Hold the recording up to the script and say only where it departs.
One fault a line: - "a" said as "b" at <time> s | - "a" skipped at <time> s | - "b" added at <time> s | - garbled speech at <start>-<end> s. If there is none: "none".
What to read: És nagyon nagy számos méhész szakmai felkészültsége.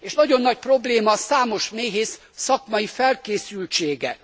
- "probléma" added at 0.6 s